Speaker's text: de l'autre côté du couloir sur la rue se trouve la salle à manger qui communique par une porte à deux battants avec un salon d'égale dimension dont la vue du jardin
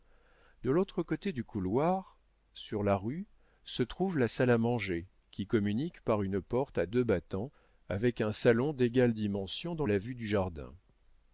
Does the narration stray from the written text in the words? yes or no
no